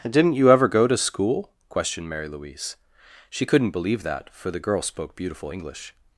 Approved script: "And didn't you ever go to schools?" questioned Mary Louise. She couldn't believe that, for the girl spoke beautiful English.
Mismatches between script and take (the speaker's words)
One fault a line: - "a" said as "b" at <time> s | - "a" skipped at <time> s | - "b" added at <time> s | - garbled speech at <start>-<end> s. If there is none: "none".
- "schools" said as "school" at 1.0 s